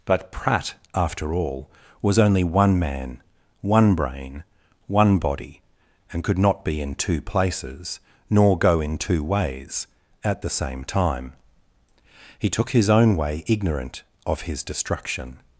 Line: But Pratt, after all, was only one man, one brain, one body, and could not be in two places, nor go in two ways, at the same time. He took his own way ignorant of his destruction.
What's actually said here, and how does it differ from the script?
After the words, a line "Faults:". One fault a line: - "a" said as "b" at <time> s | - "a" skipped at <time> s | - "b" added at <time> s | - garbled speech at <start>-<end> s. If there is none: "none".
But Pratt, after all, was only one man, one brain, one body, and could not be in two places, nor go in two ways, at the same time. He took his own way ignorant of his destruction.
Faults:
none